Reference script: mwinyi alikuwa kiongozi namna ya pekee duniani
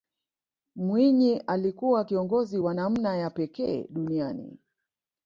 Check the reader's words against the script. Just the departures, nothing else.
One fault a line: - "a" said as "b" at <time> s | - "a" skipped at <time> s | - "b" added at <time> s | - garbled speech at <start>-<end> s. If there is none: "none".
- "wa" added at 2.6 s